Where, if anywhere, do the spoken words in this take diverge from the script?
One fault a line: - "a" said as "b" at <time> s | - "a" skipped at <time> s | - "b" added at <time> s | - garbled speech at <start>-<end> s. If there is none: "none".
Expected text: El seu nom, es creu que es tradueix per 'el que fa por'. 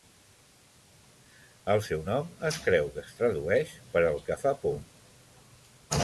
none